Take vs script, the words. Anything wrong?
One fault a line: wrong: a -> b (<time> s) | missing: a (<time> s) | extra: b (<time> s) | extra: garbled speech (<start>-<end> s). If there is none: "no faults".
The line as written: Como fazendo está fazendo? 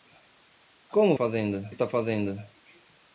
no faults